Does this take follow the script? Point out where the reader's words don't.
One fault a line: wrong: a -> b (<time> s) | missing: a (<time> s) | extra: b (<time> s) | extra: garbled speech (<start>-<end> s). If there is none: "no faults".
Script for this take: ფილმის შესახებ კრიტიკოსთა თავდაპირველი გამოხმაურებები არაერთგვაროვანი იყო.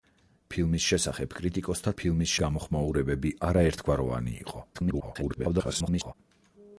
wrong: თავდაპირველი -> ფილმის (2.0 s)
extra: garbled speech (4.7-6.1 s)